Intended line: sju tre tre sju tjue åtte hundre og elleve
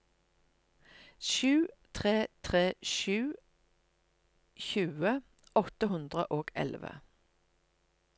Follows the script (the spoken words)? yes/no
yes